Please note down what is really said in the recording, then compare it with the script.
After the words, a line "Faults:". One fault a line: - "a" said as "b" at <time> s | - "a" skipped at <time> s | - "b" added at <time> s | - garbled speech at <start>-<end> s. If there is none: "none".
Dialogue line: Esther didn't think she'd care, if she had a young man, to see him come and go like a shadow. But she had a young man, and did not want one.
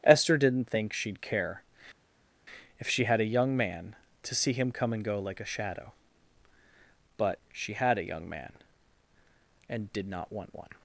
Esther didn't think she'd care, if she had a young man, to see him come and go like a shadow. But she had a young man, and did not want one.
Faults:
none